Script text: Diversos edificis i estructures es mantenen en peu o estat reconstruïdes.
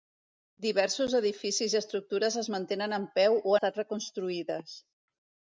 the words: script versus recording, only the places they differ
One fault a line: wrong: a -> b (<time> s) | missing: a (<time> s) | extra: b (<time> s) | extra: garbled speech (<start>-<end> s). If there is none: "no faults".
no faults